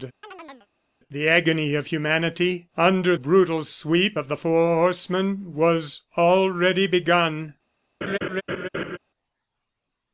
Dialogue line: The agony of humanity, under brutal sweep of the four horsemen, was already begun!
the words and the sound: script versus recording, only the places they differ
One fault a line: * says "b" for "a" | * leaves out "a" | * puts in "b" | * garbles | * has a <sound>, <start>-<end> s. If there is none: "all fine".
* has a chirp, 0.2-0.7 s
* has a laugh, 8.0-9.0 s